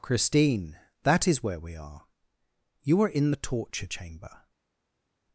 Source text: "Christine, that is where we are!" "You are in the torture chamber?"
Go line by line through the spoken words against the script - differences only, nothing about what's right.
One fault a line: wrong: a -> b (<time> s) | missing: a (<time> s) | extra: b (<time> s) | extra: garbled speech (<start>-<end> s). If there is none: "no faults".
no faults